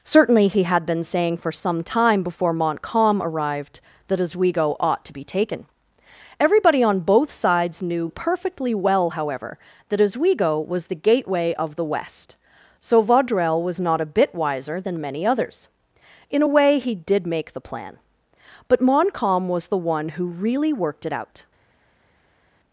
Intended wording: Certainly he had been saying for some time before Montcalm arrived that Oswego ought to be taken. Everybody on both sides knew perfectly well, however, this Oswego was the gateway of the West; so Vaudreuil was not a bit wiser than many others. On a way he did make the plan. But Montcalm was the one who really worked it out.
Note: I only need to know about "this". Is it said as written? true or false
false